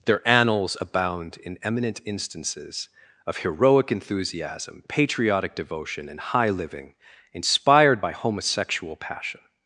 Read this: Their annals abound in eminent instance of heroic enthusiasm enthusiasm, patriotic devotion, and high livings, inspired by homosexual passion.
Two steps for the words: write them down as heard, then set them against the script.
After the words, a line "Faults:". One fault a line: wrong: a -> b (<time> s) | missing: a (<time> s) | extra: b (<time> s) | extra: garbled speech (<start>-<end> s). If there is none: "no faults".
Their annals abound in eminent instances of heroic enthusiasm, patriotic devotion, and high living, inspired by homosexual passion.
Faults:
wrong: instance -> instances (2.0 s)
missing: enthusiasm (4.8 s)
wrong: livings -> living (6.5 s)